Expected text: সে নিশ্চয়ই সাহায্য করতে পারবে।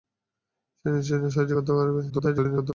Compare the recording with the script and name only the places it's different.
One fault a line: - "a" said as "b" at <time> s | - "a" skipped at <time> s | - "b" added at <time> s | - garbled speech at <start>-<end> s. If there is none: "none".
- garbled speech at 2.1-2.7 s